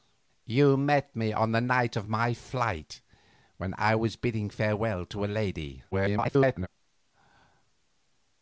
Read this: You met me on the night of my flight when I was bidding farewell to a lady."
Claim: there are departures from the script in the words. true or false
true